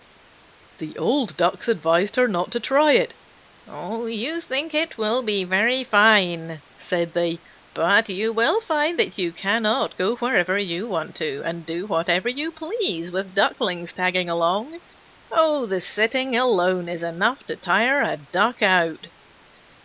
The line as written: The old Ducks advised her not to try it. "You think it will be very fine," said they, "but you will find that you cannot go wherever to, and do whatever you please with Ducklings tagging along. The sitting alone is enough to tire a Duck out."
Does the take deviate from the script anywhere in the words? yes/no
yes